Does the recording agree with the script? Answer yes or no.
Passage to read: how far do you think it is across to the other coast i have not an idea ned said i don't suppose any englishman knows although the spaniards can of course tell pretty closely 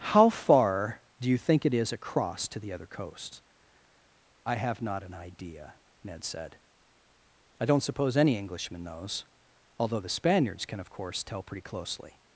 yes